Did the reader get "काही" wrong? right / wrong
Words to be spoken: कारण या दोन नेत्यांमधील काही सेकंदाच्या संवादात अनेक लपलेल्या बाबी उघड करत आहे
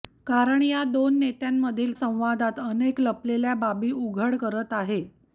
wrong